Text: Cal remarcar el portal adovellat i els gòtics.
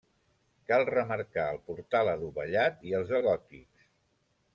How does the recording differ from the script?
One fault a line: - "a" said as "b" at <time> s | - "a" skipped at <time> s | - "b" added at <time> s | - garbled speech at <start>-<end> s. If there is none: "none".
none